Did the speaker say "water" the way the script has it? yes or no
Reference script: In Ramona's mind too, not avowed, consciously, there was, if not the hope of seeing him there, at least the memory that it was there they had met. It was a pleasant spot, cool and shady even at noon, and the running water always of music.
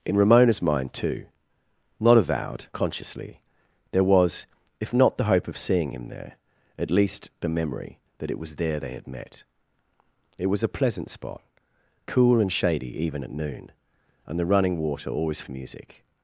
yes